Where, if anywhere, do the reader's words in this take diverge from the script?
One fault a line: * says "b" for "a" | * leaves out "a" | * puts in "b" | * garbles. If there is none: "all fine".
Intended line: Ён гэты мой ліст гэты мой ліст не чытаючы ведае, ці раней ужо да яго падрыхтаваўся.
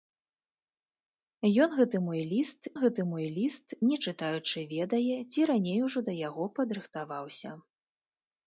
all fine